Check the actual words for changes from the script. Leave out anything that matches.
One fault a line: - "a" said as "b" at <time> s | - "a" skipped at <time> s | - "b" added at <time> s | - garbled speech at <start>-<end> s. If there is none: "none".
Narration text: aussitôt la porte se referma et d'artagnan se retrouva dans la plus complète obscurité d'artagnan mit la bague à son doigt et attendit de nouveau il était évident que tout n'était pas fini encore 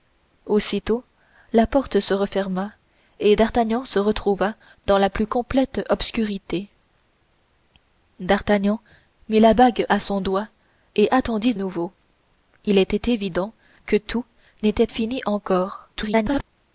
- "de" skipped at 11.5 s
- "pas" skipped at 14.9 s
- garbled speech at 15.9-16.4 s